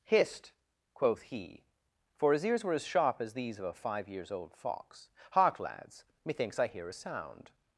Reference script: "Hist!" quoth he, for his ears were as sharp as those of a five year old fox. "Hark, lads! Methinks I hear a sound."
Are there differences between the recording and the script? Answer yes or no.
yes